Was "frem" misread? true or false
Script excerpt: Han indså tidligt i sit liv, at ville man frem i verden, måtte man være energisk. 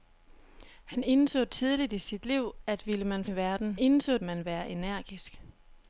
true